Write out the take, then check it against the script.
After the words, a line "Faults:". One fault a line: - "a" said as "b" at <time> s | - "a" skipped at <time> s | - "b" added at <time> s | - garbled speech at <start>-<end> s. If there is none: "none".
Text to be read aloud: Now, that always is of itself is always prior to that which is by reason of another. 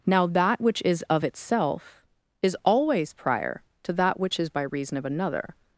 Now, that which is of itself is always prior to that which is by reason of another.
Faults:
- "always" said as "which" at 0.6 s